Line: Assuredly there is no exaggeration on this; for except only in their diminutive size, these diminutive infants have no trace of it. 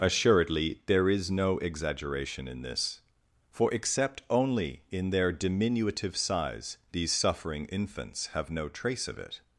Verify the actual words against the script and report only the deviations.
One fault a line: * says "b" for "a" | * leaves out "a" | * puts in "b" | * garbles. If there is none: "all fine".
* says "in" for "on"
* says "suffering" for "diminutive"